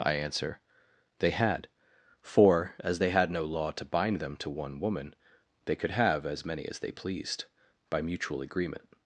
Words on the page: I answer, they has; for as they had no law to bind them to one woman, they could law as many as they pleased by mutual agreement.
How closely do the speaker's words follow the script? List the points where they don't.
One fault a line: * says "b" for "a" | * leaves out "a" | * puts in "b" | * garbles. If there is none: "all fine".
* says "had" for "has"
* says "have" for "law"